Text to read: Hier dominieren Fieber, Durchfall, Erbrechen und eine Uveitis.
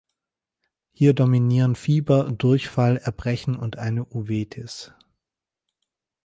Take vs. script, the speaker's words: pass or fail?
pass